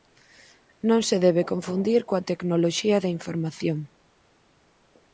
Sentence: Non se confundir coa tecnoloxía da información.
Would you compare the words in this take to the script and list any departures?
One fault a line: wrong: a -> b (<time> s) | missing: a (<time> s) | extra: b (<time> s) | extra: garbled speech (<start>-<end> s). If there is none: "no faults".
extra: debe (1.2 s)